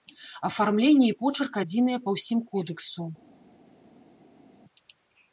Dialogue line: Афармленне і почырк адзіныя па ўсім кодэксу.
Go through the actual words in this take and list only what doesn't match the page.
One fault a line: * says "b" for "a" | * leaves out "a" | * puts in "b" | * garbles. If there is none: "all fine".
all fine